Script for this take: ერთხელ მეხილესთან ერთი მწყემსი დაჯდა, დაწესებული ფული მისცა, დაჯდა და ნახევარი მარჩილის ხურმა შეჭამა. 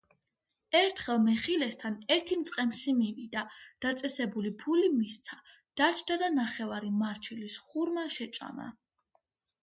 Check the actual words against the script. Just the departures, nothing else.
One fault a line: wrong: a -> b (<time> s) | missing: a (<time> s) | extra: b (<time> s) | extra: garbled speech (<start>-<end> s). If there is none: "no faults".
wrong: დაჯდა -> მივიდა (3.0 s)